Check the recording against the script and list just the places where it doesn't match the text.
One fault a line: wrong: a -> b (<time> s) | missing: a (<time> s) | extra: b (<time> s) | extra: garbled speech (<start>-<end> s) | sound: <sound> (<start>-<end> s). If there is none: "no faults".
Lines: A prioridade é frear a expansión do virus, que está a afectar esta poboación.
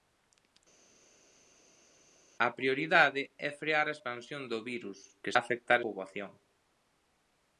missing: está (5.3 s)
missing: esta (5.8 s)